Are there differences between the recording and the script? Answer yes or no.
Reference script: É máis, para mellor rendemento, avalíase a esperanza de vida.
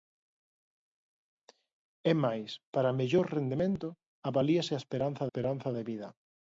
yes